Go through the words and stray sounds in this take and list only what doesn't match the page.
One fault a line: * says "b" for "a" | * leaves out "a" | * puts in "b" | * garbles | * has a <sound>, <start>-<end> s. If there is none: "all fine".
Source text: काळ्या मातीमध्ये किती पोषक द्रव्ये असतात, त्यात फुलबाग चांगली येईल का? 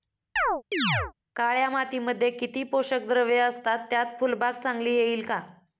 * has a chirp, 0.4-1.1 s